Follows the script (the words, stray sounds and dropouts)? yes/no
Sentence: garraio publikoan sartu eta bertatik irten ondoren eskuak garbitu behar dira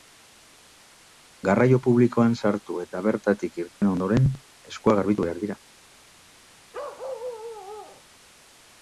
no